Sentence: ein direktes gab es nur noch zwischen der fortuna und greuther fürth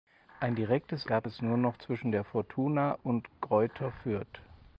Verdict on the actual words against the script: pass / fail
pass